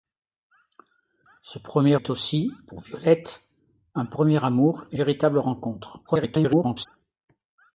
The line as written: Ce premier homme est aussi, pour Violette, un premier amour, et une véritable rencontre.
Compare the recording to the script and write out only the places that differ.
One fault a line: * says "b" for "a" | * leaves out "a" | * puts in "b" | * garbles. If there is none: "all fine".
* leaves out "homme"
* leaves out "une"
* garbles